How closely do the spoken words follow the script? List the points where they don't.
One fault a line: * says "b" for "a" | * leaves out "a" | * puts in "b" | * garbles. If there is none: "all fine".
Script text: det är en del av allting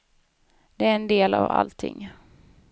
all fine